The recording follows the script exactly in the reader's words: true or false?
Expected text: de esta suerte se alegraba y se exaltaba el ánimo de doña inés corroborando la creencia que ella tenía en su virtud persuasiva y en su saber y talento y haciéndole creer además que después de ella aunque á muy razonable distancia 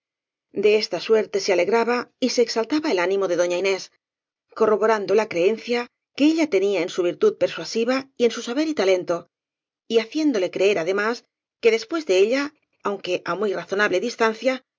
true